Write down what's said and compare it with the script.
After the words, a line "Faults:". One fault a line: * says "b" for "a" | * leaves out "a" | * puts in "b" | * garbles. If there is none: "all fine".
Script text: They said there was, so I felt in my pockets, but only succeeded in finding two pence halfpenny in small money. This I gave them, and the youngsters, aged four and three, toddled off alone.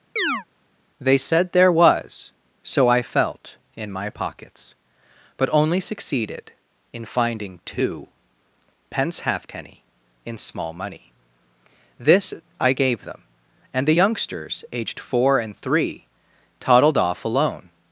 They said there was, so I felt in my pockets, but only succeeded in finding two pence halfpenny in small money. This I gave them, and the youngsters, aged four and three, toddled off alone.
Faults:
all fine